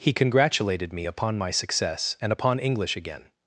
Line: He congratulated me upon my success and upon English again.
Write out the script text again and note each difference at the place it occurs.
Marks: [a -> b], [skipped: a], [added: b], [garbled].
He congratulated me upon my success and upon English again.